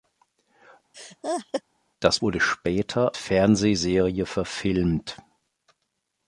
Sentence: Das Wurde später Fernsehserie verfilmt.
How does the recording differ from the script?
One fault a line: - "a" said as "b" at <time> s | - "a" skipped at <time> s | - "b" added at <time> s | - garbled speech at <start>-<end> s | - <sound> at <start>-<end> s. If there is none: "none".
- laugh at 0.9-1.6 s